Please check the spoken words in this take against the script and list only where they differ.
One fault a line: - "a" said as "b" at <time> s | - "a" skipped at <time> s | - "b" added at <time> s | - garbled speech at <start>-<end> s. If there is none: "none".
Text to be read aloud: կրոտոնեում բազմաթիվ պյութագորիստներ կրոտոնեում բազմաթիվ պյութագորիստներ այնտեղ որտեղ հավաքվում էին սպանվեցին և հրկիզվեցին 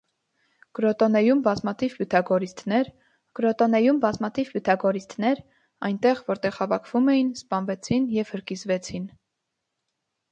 none